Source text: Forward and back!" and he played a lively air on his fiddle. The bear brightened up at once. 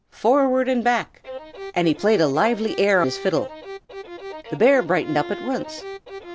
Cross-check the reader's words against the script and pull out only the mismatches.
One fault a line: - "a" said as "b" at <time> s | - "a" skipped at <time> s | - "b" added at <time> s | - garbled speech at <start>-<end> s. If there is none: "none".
- "on" skipped at 3.0 s